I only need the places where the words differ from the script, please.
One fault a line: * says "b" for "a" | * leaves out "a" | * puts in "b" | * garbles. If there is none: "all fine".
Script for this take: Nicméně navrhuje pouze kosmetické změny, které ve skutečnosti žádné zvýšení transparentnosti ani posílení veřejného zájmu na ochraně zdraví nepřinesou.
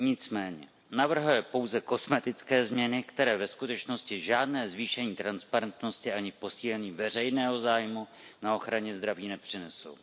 all fine